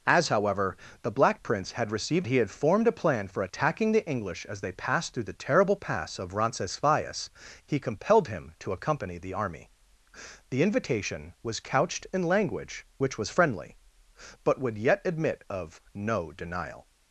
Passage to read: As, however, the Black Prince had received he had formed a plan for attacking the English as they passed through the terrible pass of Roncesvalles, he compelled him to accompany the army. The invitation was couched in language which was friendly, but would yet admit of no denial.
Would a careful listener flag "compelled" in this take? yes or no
no